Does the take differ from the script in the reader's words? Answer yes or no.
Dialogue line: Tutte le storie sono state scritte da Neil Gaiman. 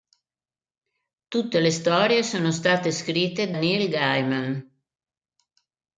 yes